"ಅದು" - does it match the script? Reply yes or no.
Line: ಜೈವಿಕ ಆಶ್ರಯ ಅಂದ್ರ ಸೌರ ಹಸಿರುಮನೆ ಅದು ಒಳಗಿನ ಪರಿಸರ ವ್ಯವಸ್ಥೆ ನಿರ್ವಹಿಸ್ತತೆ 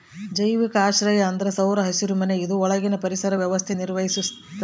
no